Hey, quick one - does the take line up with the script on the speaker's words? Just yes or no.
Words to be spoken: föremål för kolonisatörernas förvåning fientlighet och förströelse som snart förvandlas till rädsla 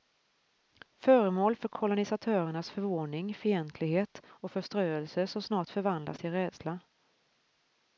yes